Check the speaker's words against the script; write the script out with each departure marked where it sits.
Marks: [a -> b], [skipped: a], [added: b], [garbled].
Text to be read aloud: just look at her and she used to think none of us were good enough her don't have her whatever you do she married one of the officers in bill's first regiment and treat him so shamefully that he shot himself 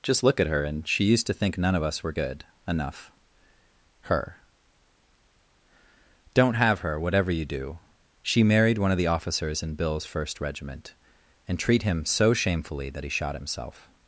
just look at her and she used to think none of us were good enough her don't have her whatever you do she married one of the officers in bill's first regiment and treat him so shamefully that he shot himself